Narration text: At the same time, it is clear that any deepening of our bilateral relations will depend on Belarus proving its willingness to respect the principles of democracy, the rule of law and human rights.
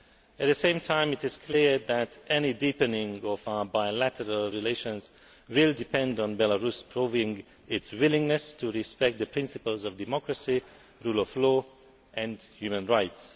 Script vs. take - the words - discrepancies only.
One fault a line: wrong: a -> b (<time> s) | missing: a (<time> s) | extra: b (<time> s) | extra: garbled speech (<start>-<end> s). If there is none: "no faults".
no faults